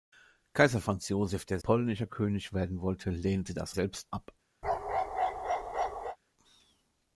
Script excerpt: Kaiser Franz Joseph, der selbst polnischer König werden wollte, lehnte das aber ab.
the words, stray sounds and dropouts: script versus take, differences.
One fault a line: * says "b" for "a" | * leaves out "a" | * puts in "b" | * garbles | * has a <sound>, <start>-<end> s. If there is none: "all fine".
* leaves out "selbst"
* says "selbst" for "aber"
* has a bark, 4.6-6.2 s